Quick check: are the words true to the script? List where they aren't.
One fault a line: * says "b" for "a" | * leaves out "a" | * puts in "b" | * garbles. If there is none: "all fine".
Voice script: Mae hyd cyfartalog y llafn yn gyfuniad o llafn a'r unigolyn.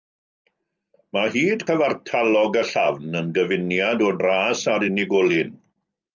* says "dras" for "llafn"